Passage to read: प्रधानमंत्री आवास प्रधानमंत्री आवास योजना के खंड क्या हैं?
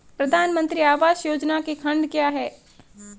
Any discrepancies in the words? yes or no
yes